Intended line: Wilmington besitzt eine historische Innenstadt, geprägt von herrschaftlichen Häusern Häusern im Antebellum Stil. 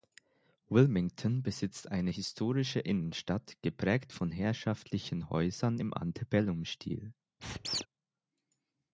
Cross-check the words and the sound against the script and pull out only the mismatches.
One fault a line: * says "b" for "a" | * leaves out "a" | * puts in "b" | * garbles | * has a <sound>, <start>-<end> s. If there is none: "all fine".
* leaves out "Häusern"
* has a squeak, 7.4-7.9 s